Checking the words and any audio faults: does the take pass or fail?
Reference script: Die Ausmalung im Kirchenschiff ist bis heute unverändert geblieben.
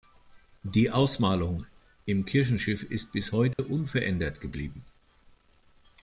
fail